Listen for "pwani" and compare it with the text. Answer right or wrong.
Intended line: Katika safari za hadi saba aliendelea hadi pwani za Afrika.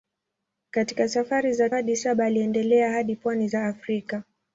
right